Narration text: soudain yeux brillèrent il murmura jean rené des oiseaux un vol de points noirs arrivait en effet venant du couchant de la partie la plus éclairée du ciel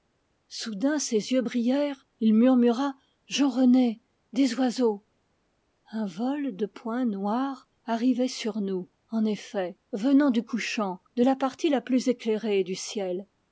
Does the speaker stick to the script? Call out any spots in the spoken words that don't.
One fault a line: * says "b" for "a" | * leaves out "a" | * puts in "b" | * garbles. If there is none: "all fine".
* puts in "ses"
* puts in "sur nous"